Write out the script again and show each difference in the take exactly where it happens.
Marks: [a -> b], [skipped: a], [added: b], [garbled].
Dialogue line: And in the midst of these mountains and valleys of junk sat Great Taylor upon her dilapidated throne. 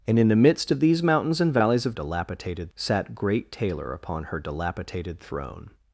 And in the midst of these mountains and valleys of [junk -> dilapidated] sat Great Taylor upon her dilapidated throne.